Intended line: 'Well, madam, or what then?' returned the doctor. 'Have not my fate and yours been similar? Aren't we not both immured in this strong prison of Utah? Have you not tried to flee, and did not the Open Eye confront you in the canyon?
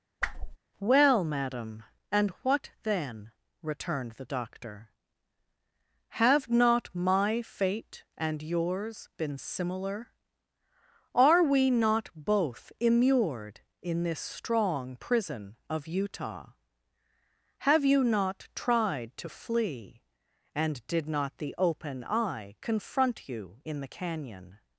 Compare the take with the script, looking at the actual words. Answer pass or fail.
fail